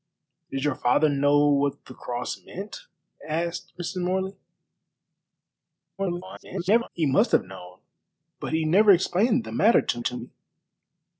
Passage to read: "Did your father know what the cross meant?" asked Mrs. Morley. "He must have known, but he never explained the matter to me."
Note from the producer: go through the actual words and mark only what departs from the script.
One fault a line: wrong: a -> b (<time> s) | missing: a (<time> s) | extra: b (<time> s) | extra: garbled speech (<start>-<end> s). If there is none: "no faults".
extra: garbled speech (6.0-6.9 s)
extra: to (10.0 s)